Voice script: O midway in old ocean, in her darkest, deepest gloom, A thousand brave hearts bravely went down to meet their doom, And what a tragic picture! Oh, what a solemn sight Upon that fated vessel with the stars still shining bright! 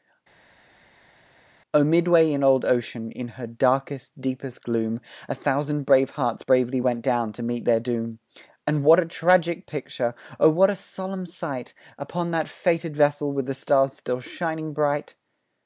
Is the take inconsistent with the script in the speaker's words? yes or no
no